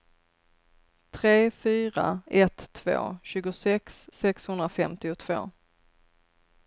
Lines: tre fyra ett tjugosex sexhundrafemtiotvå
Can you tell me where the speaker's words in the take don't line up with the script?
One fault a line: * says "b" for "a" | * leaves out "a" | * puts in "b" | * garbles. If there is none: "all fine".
* puts in "två"